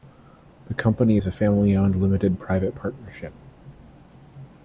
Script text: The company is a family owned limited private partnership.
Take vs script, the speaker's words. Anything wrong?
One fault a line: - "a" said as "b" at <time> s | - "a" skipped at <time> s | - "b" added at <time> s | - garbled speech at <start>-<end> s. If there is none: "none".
none